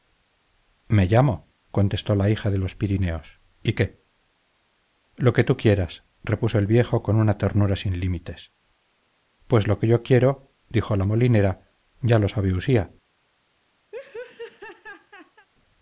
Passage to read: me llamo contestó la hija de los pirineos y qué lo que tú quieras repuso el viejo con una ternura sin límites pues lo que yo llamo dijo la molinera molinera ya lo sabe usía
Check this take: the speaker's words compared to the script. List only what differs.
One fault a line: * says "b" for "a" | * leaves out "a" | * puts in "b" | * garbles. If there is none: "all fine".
* says "quiero" for "llamo"
* leaves out "molinera"